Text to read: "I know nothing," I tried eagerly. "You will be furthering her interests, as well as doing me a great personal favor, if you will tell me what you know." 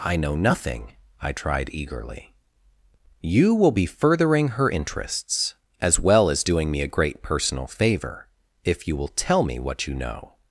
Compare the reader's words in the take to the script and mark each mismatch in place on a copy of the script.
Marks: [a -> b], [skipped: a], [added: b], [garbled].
"I know nothing," I tried eagerly. "You will be furthering her interests, as well as doing me a great personal favor, if you will tell me what you know."